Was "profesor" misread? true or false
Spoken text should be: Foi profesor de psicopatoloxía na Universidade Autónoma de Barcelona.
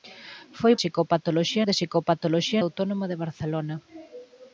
true